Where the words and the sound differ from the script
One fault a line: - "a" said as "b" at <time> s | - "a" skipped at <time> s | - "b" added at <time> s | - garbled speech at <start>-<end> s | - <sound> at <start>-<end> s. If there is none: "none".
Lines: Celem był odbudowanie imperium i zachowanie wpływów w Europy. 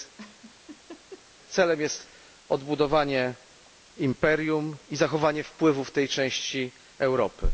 - laugh at 0.2-1.3 s
- "był" said as "jest" at 1.8 s
- "tej części" added at 5.9 s